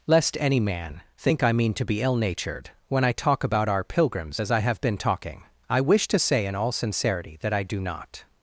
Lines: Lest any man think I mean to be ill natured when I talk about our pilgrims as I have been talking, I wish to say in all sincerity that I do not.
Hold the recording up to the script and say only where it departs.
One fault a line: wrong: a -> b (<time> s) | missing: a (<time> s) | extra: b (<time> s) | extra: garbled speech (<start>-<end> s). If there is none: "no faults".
no faults